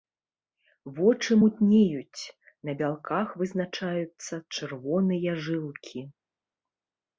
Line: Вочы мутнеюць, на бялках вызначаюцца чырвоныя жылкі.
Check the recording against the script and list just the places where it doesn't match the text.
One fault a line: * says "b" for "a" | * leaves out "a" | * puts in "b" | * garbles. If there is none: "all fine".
all fine